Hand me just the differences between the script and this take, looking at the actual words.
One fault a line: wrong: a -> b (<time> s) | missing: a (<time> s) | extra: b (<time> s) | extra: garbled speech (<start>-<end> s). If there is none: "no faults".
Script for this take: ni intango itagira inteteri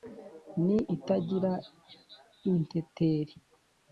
missing: intango (0.8 s)